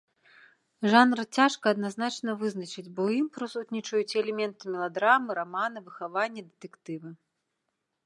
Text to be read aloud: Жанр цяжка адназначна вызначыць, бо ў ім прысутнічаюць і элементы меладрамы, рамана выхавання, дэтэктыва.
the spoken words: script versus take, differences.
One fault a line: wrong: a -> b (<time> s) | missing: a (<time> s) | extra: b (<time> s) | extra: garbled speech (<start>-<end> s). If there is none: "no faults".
no faults